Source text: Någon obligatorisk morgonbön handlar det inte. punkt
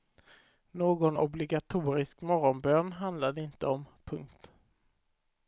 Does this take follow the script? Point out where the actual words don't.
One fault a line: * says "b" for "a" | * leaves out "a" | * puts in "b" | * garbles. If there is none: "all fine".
* puts in "om"